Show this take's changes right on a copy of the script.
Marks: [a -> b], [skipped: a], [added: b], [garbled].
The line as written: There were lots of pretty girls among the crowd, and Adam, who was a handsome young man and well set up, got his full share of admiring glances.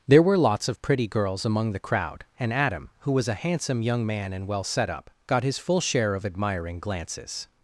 There were lots of pretty girls among the crowd, and Adam, who was a handsome young man and well set up, got his full share of admiring glances.